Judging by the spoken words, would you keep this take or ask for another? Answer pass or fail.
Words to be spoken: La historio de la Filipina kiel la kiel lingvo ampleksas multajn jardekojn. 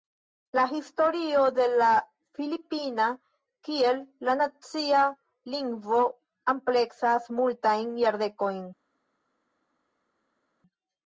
fail